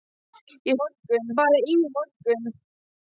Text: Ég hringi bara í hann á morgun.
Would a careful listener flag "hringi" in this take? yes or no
yes